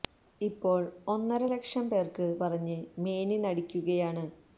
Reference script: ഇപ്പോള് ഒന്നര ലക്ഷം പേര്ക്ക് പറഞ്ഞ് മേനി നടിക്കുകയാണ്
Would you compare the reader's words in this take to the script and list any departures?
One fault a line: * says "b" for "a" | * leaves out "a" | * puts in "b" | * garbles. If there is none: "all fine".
all fine